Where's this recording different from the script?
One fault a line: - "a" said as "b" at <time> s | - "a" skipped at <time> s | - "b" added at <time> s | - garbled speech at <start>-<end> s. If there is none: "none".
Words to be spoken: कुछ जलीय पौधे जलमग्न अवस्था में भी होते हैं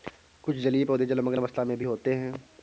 none